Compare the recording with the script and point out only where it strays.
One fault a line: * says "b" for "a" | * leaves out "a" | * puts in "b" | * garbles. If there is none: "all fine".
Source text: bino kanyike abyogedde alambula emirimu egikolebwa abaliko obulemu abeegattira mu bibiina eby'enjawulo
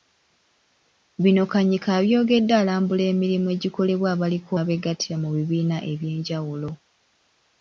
* leaves out "obulemu"